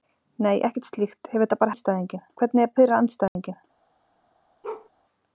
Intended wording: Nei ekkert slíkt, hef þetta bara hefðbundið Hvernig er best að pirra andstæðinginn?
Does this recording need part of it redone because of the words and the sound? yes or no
yes